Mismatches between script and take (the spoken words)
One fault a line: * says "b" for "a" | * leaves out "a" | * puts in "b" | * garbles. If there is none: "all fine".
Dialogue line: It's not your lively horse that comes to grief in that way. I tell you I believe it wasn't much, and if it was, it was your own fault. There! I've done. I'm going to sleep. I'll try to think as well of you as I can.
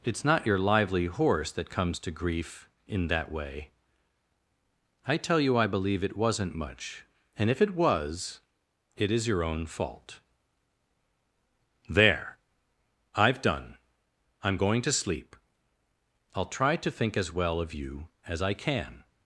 * says "is" for "was"